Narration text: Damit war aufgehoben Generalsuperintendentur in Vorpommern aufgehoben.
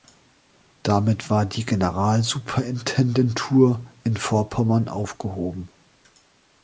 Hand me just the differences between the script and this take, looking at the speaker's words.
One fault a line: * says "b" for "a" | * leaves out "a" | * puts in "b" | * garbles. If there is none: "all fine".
* says "die" for "aufgehoben"